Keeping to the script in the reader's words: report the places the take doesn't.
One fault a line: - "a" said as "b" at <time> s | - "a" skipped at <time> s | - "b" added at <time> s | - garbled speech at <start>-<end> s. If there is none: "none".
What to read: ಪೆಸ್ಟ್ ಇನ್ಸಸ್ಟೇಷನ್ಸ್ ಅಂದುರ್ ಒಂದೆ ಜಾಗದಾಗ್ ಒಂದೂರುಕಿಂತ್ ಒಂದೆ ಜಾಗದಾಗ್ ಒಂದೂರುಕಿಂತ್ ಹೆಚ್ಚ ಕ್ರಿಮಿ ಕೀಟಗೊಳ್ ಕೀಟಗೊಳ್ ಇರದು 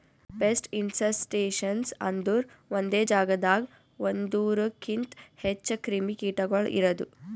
- "ಒಂದೆ ಜಾಗದಾಗ್ ಒಂದೂರುಕಿಂತ್" skipped at 5.1 s
- "ಕೀಟಗೊಳ್" skipped at 6.7 s